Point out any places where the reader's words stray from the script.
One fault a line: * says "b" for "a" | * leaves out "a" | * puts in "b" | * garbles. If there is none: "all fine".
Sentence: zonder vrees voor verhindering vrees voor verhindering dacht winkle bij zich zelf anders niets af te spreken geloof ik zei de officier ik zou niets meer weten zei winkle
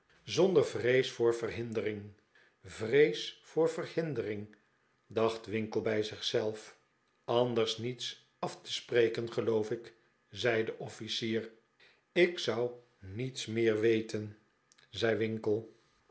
all fine